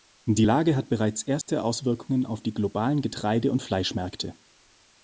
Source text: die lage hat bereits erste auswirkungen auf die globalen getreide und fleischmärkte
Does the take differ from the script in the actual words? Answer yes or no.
no